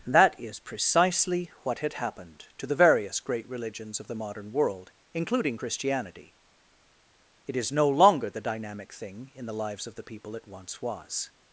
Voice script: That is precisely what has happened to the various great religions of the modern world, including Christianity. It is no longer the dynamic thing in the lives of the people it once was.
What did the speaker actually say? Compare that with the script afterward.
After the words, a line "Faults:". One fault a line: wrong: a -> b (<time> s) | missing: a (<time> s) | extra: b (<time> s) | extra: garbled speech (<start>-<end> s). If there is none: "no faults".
That is precisely what had happened to the various great religions of the modern world, including Christianity. It is no longer the dynamic thing in the lives of the people it once was.
Faults:
wrong: has -> had (1.8 s)